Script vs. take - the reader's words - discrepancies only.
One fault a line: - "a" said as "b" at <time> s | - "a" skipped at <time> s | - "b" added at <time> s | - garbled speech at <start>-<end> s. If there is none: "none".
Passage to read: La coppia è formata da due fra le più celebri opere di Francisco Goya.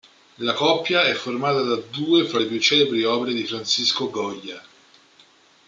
none